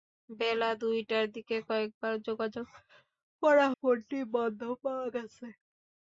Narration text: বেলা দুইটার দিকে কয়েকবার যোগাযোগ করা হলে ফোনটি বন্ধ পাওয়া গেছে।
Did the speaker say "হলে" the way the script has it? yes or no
no